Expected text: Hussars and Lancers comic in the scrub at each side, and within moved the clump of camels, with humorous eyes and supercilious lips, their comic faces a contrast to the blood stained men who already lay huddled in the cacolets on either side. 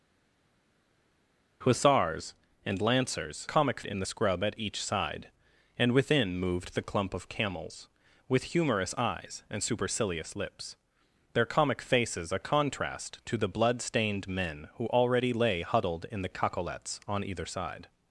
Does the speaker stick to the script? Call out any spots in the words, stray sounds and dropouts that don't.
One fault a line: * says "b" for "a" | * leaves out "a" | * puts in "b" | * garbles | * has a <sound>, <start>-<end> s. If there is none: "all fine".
all fine